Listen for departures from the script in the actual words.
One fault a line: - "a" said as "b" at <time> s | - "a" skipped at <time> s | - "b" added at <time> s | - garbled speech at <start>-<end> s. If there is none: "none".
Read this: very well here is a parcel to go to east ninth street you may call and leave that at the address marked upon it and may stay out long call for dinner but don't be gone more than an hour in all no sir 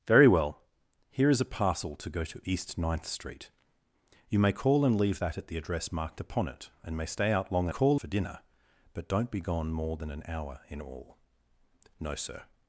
none